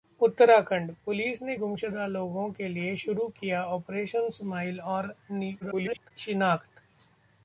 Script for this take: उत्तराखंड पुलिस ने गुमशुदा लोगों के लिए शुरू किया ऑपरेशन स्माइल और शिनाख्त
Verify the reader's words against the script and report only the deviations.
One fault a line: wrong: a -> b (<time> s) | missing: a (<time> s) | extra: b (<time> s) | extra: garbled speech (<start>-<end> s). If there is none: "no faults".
extra: garbled speech (5.6-6.1 s)